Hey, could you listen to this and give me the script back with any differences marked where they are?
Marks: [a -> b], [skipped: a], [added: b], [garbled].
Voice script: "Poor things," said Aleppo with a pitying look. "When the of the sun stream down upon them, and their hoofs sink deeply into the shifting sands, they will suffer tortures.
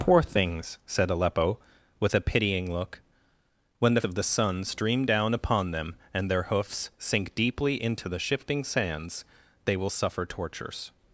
"Poor things," said Aleppo with a pitying look. "When the of the sun stream down upon them, and their hoofs sink deeply into the shifting sands, they will suffer tortures.